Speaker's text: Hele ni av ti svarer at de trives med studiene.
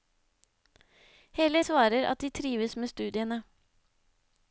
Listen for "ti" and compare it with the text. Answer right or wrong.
wrong